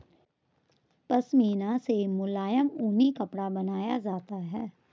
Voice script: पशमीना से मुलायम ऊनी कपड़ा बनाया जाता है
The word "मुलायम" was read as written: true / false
true